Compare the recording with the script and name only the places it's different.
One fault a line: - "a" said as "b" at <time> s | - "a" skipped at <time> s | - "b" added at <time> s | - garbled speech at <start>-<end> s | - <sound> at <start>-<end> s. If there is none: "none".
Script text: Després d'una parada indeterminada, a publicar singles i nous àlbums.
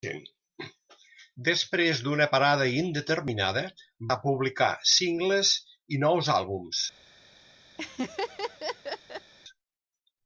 - laugh at 7.8-9.3 s